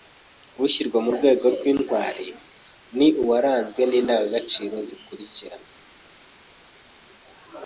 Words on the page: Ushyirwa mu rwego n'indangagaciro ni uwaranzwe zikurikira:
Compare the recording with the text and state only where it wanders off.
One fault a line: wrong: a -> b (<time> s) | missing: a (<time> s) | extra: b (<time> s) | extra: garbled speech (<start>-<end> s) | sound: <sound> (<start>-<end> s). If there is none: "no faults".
wrong: n'indangagaciro -> rw'intwari (1.6 s)
extra: n'indangagaciro (3.8 s)